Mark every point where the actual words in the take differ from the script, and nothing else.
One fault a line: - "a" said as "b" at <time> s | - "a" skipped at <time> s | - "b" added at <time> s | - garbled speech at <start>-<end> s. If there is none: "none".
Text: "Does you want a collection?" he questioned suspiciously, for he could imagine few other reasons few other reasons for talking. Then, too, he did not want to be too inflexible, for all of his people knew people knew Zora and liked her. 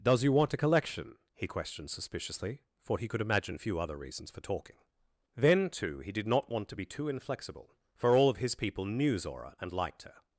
- "few other reasons" skipped at 4.3 s
- "people knew" skipped at 9.2 s